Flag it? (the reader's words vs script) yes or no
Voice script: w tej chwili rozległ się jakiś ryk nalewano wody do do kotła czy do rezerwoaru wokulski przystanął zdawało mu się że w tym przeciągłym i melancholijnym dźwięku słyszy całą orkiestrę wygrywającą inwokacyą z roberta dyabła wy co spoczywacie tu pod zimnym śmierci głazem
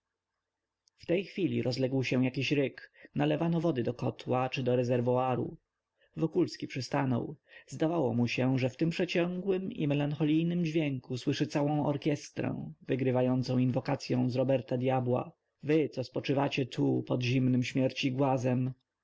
yes